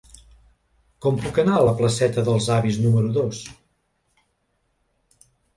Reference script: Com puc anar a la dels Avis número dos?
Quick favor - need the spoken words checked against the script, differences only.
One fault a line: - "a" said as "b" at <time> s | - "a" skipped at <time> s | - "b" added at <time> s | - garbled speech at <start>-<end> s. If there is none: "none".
- "placeta" added at 1.8 s